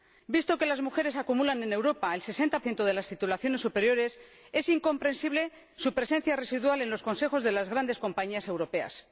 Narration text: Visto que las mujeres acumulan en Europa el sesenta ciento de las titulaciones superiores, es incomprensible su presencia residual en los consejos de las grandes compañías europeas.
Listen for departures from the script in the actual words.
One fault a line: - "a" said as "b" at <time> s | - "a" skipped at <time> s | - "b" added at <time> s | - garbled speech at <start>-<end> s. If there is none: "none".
none